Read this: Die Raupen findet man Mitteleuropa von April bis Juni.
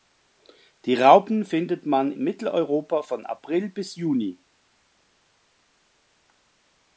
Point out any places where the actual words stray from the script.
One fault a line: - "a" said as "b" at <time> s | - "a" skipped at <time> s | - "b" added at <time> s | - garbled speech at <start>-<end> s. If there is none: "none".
none